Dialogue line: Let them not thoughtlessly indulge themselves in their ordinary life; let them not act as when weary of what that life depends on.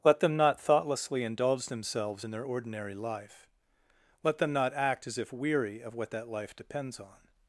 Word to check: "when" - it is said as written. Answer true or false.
false